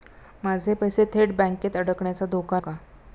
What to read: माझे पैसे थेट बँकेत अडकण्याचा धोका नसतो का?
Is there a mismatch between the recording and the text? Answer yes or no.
yes